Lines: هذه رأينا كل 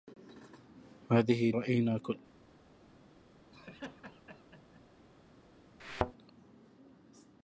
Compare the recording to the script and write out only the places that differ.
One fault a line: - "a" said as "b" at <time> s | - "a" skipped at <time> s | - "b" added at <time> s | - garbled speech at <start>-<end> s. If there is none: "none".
none